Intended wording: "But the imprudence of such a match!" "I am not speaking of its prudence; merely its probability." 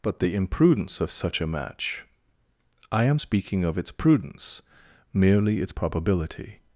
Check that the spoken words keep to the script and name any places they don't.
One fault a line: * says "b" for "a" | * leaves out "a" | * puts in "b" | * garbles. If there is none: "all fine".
* leaves out "not"